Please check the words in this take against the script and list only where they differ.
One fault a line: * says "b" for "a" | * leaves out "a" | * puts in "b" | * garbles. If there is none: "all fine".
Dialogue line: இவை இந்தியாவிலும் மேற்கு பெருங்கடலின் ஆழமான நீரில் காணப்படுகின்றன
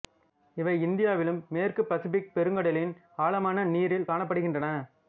* puts in "பசிபிக்"